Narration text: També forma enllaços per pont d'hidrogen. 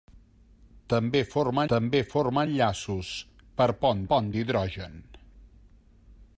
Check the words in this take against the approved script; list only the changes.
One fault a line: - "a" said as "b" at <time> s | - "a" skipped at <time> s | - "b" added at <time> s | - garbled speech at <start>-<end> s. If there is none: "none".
- "també forma" added at 1.7 s
- "pont" added at 4.1 s